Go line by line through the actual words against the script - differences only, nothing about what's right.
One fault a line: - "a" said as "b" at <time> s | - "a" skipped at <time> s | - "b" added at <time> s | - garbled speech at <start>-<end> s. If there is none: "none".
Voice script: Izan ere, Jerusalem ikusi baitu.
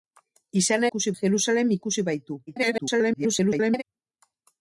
- "ere" said as "ikusi" at 0.9 s
- garbled speech at 2.5-3.8 s